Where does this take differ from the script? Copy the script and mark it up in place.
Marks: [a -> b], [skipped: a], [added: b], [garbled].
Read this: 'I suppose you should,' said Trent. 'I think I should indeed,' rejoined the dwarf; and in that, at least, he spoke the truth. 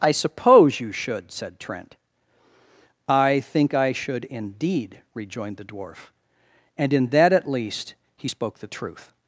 'I suppose you should,' said Trent. 'I think I should indeed,' rejoined the dwarf; and in that, at least, he spoke the truth.